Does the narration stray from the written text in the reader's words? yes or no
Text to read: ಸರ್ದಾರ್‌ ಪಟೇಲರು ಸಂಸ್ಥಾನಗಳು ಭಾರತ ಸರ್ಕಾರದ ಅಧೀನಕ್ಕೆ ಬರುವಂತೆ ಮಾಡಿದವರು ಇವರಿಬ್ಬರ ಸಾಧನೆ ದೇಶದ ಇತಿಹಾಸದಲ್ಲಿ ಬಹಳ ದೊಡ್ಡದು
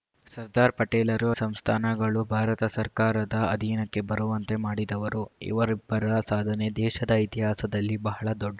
no